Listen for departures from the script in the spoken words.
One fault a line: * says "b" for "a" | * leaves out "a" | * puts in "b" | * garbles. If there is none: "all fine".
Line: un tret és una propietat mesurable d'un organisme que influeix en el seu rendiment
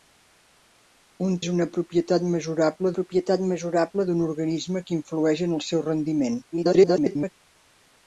* leaves out "tret"
* puts in "propietat mesurable"
* garbles